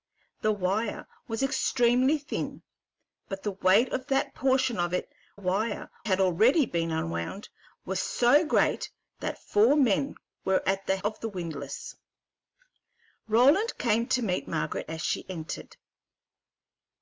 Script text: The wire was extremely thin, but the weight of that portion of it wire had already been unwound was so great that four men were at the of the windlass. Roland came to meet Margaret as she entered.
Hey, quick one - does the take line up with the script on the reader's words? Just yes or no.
yes